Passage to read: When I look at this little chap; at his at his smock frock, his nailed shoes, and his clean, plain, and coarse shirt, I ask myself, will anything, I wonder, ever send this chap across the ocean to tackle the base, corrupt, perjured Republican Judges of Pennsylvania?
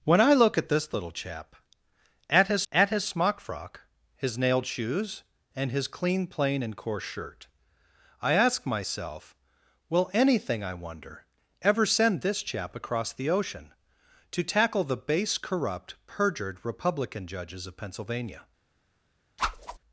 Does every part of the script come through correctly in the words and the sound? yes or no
no